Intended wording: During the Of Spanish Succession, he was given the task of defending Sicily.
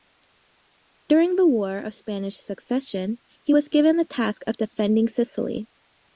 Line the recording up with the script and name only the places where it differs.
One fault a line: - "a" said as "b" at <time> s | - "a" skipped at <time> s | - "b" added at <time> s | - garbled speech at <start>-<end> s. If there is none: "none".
- "War" added at 1.5 s